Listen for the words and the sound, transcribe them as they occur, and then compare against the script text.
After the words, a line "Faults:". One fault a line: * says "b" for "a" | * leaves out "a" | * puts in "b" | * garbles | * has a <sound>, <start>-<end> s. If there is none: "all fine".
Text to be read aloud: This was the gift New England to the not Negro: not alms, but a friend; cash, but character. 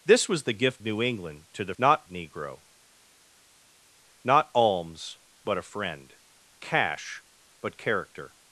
This was the gift New England to the not Negro: not alms, but a friend; cash, but character.
Faults:
all fine